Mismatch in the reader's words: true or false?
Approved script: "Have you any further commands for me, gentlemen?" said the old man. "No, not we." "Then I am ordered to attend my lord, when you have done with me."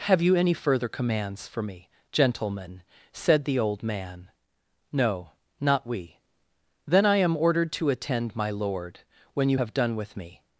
false